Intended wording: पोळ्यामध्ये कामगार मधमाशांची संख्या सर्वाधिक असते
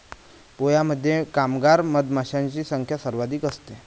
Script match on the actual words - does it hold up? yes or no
yes